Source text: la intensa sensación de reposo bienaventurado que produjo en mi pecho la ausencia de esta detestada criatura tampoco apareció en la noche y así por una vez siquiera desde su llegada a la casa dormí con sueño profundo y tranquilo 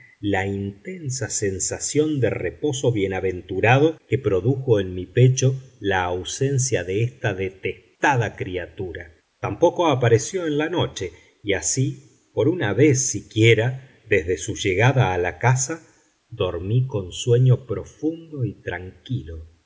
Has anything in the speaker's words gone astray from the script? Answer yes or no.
no